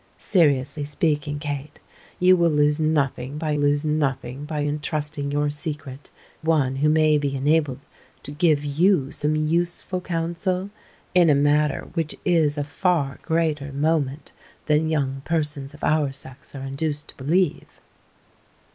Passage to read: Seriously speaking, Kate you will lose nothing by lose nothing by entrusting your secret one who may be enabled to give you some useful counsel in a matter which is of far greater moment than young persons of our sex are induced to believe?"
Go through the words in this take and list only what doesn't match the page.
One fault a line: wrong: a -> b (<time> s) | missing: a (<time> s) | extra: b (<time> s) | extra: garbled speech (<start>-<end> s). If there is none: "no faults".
no faults